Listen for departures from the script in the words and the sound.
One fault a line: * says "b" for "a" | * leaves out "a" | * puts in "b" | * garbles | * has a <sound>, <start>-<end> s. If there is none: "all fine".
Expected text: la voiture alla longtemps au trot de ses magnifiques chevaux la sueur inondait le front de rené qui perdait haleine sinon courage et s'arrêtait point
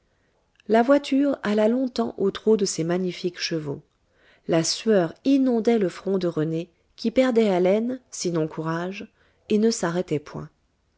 * puts in "ne"